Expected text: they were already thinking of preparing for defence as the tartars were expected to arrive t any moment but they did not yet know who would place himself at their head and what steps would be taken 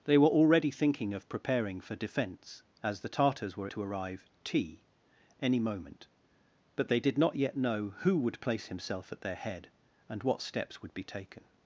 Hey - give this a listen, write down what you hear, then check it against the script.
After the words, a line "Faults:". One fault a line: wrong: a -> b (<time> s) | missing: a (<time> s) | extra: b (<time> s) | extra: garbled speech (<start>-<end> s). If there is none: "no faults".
they were already thinking of preparing for defence as the tartars were to arrive t any moment but they did not yet know who would place himself at their head and what steps would be taken
Faults:
missing: expected (3.7 s)